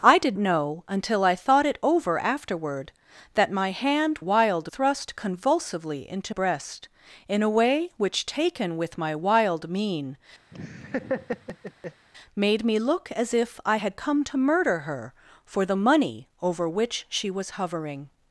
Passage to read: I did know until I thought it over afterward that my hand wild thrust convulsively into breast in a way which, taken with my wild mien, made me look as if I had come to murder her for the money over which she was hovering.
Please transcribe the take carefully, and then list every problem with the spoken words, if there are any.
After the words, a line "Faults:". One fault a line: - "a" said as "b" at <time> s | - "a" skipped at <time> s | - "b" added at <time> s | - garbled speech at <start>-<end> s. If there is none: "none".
I did know until I thought it over afterward that my hand wild thrust convulsively into breast in a way which, taken with my wild mien, made me look as if I had come to murder her for the money over which she was hovering.
Faults:
none